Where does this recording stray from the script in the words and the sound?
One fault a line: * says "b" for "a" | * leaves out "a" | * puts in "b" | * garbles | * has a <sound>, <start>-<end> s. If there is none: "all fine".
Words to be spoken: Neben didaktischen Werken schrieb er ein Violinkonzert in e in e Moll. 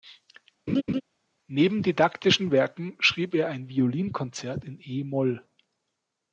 * has a laugh, 0.7-1.0 s
* leaves out "in e"